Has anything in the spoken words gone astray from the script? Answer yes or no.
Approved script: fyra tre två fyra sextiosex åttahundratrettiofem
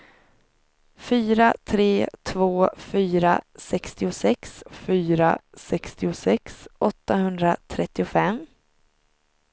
yes